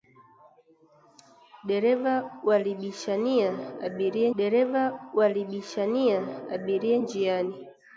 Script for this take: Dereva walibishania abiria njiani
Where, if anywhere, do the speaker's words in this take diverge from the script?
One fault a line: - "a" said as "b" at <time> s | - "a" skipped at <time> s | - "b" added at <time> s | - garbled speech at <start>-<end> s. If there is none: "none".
- "dereva walibishania abiria" added at 4.4 s